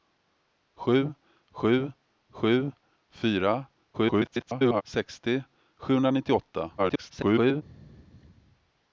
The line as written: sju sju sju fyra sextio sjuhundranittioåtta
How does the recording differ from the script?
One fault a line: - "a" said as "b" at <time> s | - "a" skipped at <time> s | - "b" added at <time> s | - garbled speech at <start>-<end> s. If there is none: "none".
- garbled speech at 3.9-4.8 s
- garbled speech at 6.8-7.6 s